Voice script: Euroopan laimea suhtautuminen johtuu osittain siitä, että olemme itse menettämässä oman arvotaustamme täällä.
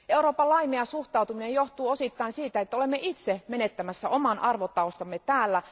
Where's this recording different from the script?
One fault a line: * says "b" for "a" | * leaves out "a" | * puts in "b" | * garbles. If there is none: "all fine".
all fine